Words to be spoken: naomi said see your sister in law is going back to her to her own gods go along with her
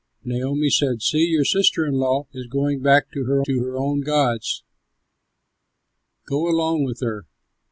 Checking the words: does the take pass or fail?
pass